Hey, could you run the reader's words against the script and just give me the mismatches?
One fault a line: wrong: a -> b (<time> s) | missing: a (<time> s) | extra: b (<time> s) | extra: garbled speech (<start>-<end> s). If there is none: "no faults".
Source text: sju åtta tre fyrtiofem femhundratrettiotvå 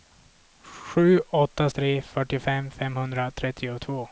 no faults